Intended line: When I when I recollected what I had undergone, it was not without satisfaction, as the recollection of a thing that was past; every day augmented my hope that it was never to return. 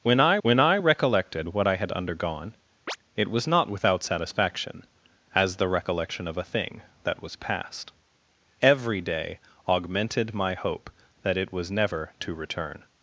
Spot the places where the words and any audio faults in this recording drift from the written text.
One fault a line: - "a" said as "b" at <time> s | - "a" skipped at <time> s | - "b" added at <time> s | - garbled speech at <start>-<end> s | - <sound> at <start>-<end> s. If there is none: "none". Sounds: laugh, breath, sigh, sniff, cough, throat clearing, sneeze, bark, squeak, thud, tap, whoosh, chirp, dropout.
- chirp at 2.9-3.0 s